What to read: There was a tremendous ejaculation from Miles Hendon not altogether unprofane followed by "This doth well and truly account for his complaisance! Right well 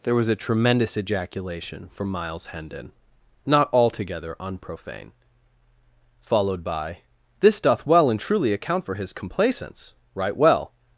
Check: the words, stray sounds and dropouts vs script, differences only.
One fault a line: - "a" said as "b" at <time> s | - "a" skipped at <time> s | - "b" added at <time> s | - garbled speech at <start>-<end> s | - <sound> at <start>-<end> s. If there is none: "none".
none